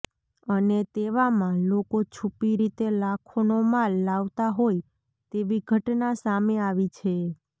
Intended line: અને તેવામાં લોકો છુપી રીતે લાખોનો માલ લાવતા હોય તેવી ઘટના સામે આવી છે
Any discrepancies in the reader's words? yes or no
no